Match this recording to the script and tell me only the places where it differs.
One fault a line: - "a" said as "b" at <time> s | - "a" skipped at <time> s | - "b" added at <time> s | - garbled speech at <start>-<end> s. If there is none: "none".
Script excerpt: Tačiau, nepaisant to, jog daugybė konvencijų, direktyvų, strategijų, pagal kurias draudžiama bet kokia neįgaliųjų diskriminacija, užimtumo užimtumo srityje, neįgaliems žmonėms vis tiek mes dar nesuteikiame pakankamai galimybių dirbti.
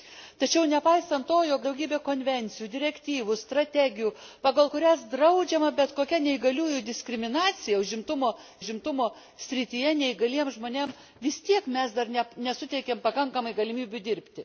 none